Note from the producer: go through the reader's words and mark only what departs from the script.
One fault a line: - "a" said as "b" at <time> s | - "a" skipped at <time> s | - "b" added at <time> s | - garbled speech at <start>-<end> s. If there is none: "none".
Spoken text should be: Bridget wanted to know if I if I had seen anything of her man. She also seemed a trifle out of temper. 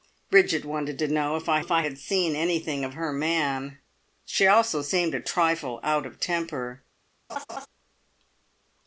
none